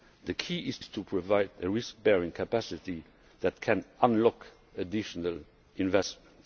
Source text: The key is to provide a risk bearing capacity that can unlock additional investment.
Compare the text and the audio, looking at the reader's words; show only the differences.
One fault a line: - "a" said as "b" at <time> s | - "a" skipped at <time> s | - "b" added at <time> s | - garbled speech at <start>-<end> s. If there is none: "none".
- "is" added at 0.8 s